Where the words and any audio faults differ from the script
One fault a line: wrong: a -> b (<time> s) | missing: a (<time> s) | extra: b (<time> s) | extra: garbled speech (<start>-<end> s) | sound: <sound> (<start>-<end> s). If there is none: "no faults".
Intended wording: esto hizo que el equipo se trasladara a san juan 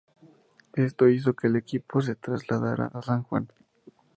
no faults